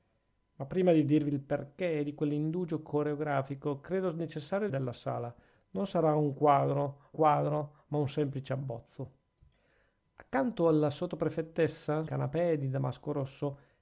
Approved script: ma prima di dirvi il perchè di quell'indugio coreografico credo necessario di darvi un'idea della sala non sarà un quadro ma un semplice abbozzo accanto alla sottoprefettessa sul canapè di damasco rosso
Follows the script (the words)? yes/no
no